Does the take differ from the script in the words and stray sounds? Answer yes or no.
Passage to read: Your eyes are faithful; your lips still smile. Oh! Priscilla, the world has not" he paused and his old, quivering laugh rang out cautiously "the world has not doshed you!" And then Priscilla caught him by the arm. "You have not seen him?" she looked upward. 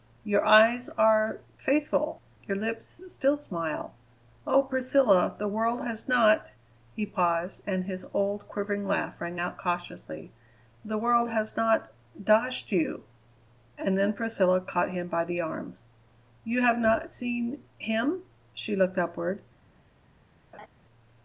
yes